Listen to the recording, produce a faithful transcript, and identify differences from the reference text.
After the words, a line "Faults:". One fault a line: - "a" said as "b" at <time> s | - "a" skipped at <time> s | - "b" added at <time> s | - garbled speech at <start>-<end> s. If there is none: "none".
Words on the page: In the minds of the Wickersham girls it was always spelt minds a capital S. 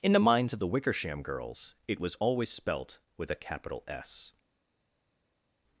In the minds of the Wickersham girls it was always spelt with a capital S.
Faults:
- "minds" said as "with" at 3.2 s